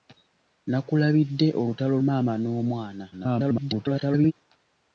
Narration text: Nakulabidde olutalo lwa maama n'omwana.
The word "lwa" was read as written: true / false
false